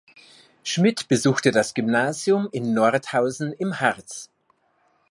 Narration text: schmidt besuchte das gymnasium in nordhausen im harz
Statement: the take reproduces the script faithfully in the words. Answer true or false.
true